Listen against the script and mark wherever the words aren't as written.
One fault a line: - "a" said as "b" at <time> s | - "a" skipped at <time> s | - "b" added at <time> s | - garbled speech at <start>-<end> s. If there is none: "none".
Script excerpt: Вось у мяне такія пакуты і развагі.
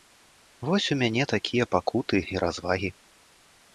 none